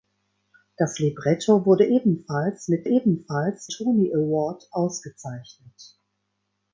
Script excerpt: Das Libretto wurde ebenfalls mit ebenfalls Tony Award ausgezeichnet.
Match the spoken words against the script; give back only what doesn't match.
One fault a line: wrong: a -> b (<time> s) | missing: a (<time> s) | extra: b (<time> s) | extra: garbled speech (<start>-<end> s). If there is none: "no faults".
no faults